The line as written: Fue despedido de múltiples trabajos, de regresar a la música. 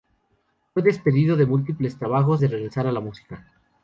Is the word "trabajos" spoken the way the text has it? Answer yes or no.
yes